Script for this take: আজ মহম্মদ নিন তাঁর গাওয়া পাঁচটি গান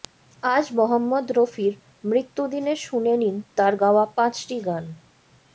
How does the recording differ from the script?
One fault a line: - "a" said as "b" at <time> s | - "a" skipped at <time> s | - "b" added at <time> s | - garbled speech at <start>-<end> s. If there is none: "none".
- "রফির মৃত্যুদিনে শুনে" added at 1.3 s